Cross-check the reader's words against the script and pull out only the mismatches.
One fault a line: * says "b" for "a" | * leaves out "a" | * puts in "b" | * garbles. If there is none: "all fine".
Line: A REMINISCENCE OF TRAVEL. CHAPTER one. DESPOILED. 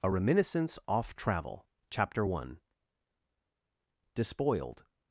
* says "Off" for "OF"